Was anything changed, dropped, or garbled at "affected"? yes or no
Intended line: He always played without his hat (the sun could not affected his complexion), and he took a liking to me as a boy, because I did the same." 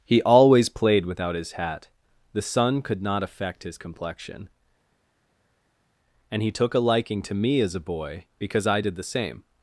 yes